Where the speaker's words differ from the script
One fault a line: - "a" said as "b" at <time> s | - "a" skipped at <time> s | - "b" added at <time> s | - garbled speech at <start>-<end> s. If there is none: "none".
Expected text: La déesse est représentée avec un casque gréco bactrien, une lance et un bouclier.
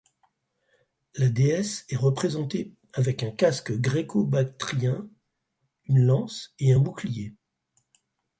none